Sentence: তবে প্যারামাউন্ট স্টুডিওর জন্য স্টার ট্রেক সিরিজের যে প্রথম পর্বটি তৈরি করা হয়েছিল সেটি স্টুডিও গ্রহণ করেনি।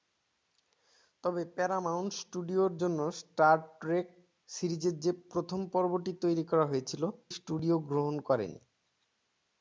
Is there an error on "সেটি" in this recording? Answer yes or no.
yes